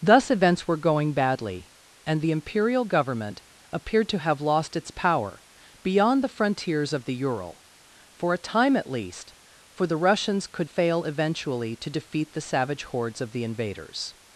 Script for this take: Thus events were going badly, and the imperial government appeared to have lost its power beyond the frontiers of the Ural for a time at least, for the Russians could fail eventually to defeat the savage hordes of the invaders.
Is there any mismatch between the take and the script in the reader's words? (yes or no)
no